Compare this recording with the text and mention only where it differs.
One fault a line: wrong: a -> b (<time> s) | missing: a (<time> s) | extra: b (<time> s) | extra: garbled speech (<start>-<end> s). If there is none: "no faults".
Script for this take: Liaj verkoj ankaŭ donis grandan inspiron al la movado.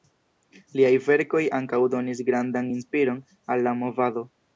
no faults